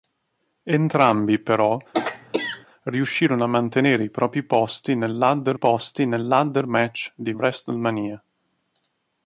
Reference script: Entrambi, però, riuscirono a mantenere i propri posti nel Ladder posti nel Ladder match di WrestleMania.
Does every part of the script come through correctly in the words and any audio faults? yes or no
no